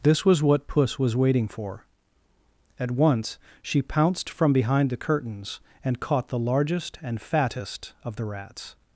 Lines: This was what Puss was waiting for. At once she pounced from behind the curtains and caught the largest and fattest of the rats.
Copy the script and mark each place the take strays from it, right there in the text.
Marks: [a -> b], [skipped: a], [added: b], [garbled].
This was what Puss was waiting for. At once she pounced from behind the curtains and caught the largest and fattest of the rats.